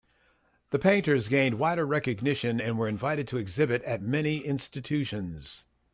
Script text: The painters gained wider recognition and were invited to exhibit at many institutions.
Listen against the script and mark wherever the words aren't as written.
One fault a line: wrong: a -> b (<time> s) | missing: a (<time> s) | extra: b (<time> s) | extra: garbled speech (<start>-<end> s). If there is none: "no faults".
no faults